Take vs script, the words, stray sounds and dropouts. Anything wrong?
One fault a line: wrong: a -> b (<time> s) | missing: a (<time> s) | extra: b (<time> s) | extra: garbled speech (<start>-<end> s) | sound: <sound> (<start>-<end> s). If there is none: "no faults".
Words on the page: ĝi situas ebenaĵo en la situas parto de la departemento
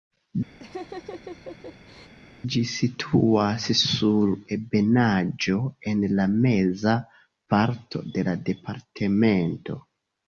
sound: laugh (0.6-2.1 s)
extra: sur (3.8 s)
wrong: situas -> meza (6.5 s)